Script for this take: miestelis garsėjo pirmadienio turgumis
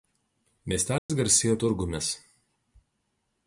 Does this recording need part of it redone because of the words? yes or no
yes